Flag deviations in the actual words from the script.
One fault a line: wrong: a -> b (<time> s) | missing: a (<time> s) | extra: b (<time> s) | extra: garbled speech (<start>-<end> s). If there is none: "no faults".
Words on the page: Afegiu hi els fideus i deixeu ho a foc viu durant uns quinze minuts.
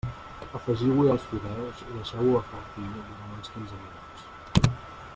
no faults